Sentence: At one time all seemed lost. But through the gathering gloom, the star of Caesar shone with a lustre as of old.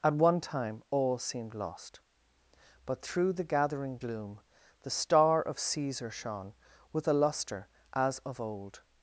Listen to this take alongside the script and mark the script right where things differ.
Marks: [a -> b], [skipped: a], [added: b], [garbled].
At one time all seemed lost. But through the gathering gloom, the star of Caesar shone with a lustre as of old.